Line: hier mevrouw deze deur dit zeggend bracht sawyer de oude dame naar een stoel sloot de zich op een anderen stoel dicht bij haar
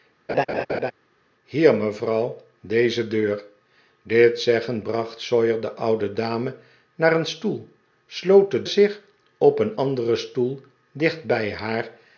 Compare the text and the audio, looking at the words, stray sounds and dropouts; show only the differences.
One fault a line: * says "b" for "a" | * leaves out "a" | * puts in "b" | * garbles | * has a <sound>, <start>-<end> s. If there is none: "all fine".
* has a laugh, 0.3-0.9 s